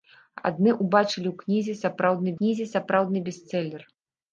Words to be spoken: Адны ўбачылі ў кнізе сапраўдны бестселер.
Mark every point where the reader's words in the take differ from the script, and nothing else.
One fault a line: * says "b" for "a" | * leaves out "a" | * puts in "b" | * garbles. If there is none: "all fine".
* puts in "кнізе сапраўдны"